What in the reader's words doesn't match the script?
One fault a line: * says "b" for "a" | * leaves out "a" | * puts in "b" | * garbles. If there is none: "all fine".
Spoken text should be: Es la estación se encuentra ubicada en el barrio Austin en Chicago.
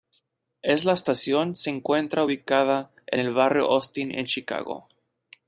all fine